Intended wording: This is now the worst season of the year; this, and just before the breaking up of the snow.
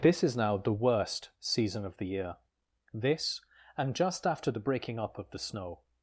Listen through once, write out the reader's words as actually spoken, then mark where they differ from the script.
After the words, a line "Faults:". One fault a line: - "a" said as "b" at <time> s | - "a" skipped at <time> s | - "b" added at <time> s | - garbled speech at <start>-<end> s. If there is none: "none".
This is now the worst season of the year; this, and just after the breaking up of the snow.
Faults:
- "before" said as "after" at 4.2 s